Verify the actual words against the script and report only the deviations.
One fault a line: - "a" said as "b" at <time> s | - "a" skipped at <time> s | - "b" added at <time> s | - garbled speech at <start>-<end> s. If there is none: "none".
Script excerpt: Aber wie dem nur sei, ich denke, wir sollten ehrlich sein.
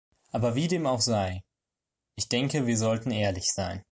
- "nur" said as "auch" at 0.8 s